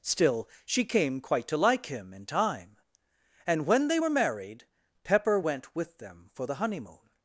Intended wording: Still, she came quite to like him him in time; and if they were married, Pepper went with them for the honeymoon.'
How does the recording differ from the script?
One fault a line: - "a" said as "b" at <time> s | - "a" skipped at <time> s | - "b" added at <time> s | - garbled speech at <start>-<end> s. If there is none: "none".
- "him" skipped at 2.1 s
- "if" said as "when" at 3.7 s